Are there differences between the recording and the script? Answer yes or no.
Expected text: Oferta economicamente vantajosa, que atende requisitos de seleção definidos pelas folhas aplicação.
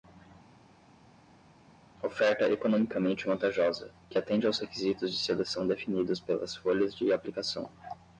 yes